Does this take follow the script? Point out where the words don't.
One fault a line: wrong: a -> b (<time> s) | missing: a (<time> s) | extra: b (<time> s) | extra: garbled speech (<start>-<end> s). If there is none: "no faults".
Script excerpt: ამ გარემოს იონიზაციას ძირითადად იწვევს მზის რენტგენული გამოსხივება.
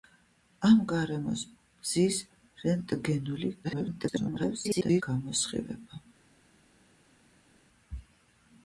missing: იონიზაციას ძირითადად იწვევს (1.4 s)
extra: garbled speech (3.6-5.0 s)